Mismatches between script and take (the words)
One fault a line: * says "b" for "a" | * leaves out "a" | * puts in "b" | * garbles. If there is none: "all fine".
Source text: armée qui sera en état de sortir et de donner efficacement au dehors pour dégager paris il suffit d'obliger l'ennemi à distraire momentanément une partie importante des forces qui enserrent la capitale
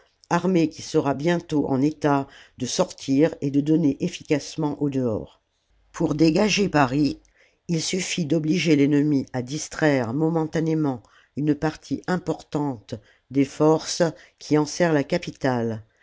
* puts in "bientôt"